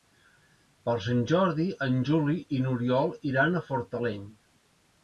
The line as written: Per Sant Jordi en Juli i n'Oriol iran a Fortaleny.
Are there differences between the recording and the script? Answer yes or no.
no